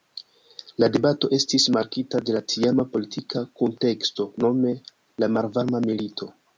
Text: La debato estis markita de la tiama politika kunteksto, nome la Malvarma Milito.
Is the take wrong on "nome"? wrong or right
right